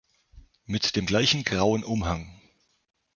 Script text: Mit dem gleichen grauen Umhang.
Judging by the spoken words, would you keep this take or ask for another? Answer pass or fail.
pass